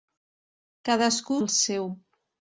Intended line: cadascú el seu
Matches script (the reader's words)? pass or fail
pass